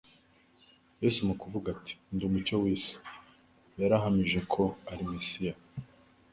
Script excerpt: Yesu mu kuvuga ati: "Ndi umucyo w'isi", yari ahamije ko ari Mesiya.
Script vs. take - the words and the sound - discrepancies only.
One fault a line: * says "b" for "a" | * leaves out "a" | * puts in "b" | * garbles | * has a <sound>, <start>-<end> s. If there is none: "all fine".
all fine